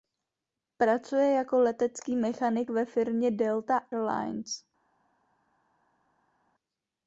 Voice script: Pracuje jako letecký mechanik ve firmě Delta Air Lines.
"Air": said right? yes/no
no